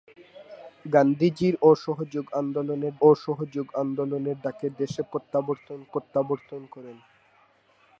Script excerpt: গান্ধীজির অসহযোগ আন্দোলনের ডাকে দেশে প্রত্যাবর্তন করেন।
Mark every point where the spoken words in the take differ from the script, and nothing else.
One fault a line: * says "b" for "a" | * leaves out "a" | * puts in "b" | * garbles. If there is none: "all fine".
* puts in "অসহযোগ আন্দোলনের"
* puts in "প্রত্যাবর্তন"